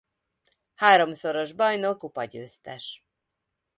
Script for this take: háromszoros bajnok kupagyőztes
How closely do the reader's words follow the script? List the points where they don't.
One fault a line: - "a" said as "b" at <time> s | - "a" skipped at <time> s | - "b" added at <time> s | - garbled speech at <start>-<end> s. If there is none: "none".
none